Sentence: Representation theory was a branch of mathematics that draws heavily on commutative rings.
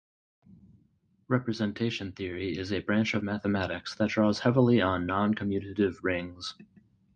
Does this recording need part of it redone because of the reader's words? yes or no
yes